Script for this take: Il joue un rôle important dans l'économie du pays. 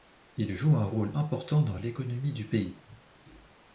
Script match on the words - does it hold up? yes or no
yes